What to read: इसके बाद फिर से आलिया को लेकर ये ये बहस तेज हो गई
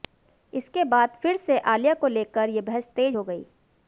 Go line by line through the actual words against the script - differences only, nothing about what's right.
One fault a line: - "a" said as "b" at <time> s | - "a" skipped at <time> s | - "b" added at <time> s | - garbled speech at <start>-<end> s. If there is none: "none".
- "ये" skipped at 2.6 s